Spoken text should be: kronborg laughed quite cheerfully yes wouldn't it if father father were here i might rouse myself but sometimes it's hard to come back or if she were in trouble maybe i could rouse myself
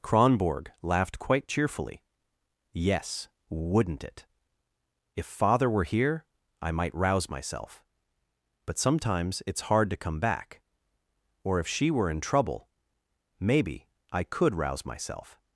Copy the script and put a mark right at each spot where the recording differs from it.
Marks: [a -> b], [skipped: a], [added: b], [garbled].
kronborg laughed quite cheerfully yes wouldn't it if father [skipped: father] were here i might rouse myself but sometimes it's hard to come back or if she were in trouble maybe i could rouse myself